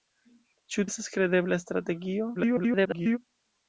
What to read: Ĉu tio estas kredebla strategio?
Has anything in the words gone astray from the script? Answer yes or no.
yes